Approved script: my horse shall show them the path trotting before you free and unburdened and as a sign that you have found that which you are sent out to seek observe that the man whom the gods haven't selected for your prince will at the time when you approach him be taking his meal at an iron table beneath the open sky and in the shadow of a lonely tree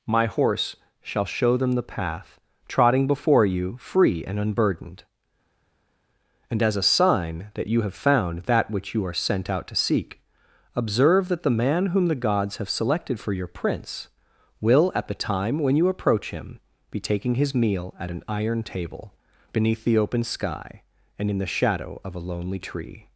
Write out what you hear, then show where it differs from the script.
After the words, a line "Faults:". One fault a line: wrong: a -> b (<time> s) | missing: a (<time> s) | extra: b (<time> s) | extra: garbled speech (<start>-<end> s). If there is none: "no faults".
my horse shall show them the path trotting before you free and unburdened and as a sign that you have found that which you are sent out to seek observe that the man whom the gods have selected for your prince will at the time when you approach him be taking his meal at an iron table beneath the open sky and in the shadow of a lonely tree
Faults:
wrong: haven't -> have (12.6 s)